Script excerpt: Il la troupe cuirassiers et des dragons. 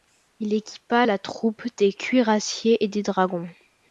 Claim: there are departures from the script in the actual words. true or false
true